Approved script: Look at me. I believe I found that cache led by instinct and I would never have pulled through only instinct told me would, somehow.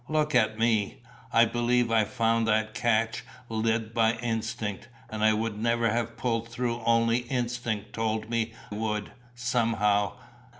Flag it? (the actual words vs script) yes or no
no